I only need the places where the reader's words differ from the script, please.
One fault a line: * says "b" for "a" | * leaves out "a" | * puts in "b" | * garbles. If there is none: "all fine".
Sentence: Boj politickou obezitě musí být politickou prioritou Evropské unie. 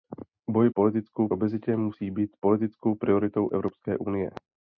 all fine